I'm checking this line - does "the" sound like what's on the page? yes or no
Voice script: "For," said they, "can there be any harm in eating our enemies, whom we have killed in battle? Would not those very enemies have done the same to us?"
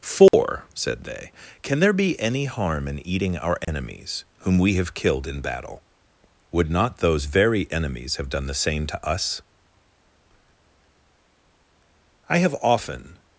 yes